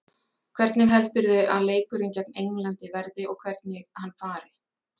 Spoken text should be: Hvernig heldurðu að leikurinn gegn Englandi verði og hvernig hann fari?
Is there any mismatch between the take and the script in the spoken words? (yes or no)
no